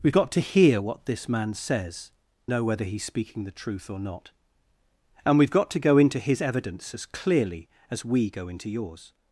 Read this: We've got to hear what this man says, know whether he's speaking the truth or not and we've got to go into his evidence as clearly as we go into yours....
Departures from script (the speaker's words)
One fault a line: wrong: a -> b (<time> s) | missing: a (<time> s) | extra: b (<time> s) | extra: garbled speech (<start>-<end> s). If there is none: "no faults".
no faults